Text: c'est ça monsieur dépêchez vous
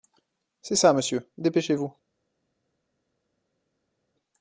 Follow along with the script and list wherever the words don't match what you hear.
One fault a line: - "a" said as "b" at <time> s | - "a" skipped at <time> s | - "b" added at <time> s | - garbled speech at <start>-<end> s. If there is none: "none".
none